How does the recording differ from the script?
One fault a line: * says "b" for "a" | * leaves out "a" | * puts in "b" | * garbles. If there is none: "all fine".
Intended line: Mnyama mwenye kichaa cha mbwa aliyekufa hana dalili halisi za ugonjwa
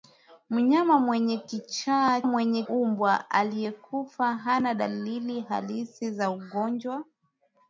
* says "mwenye" for "cha"